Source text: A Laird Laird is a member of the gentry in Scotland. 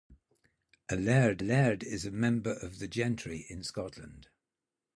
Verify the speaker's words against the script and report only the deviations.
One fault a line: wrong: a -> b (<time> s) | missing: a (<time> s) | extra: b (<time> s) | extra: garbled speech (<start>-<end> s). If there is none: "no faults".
no faults